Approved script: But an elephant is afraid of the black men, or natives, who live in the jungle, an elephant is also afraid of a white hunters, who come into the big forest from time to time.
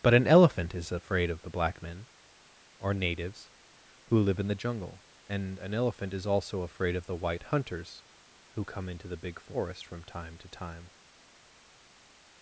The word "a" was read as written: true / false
false